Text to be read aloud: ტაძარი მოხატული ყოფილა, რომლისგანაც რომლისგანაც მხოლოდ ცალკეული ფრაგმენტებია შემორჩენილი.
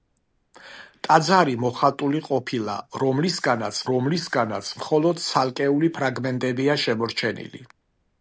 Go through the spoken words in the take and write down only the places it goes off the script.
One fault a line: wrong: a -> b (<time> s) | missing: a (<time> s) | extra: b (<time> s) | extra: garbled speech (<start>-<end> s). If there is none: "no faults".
no faults